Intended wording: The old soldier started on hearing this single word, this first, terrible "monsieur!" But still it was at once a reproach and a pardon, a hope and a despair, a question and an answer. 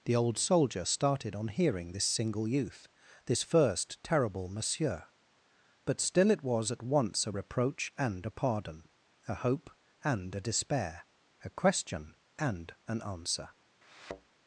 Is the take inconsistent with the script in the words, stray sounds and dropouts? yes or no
yes